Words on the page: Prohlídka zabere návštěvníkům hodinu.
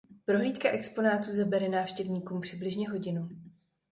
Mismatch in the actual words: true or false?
true